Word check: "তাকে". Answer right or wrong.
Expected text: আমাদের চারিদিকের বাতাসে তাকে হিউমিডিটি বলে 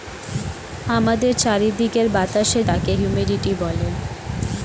right